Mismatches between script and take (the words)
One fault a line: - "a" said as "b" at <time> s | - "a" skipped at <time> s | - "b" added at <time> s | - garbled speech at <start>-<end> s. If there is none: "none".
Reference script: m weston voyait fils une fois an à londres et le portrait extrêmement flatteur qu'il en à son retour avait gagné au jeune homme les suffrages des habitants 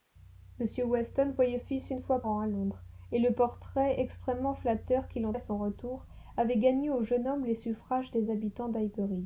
none